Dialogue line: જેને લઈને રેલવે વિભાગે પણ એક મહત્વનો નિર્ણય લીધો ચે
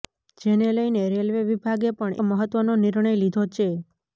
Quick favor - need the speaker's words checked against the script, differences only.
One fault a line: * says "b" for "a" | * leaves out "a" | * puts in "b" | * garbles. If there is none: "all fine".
* leaves out "એક"